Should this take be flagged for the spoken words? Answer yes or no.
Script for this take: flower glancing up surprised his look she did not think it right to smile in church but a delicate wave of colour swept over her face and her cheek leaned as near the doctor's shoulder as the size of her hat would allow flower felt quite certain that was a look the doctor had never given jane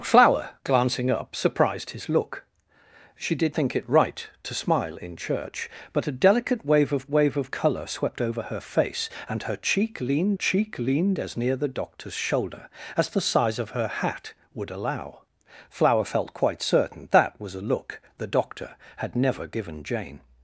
yes